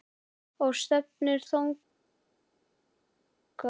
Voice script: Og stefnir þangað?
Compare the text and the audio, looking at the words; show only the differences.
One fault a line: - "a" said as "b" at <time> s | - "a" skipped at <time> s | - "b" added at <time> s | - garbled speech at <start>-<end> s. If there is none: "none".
none